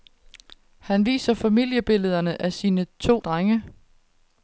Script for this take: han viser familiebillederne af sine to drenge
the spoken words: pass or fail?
pass